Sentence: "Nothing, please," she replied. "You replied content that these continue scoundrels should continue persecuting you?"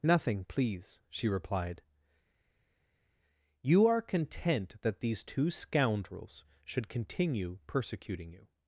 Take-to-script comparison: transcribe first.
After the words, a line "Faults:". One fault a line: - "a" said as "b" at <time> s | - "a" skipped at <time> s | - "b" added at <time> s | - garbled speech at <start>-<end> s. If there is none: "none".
"Nothing, please," she replied. "You are content that these two scoundrels should continue persecuting you?"
Faults:
- "replied" said as "are" at 3.9 s
- "continue" said as "two" at 5.2 s